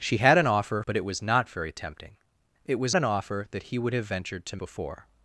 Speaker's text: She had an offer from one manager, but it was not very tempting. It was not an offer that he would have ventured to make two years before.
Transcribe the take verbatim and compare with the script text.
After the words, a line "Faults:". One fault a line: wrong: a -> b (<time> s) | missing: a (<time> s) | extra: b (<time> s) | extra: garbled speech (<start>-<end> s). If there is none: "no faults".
She had an offer but it was not very tempting. It was an offer that he would have ventured to before.
Faults:
missing: from one manager (0.8 s)
missing: not (3.0 s)
missing: make two years (4.6 s)